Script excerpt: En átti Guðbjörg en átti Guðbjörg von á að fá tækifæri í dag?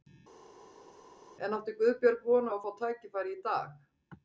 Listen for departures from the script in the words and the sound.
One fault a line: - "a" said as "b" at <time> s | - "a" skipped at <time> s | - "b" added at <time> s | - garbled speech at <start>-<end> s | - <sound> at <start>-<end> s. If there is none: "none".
- "en átti Guðbjörg" skipped at 2.2 s